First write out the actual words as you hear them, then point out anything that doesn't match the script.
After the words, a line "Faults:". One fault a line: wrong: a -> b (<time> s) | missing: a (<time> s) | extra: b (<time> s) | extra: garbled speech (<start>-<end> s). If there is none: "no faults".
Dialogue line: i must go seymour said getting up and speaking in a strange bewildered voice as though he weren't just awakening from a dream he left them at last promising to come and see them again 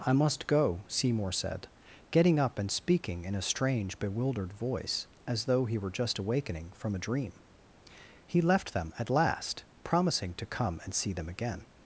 i must go seymour said getting up and speaking in a strange bewildered voice as though he were just awakening from a dream he left them at last promising to come and see them again
Faults:
wrong: weren't -> were (5.8 s)